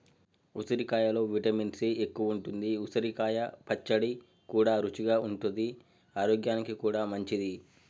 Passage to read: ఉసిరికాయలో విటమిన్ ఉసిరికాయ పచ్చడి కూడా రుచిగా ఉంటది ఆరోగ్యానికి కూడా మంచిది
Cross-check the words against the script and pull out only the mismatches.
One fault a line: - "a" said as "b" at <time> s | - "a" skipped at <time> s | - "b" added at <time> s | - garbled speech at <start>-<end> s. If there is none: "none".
- "సి ఎక్కువుంటది" added at 1.7 s